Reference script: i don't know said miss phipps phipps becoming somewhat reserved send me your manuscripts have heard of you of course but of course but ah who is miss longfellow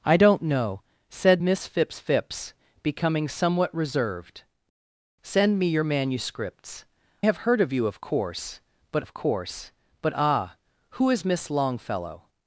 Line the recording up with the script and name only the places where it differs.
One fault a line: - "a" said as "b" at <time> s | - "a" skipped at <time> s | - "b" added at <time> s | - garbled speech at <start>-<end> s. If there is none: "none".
none